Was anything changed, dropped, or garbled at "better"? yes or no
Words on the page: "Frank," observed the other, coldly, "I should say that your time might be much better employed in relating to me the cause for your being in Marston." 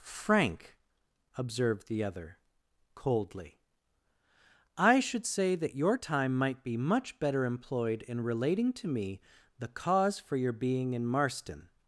no